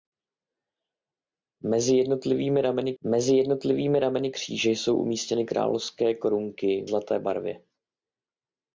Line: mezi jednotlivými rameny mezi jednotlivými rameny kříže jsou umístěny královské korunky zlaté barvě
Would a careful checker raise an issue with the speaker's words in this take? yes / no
no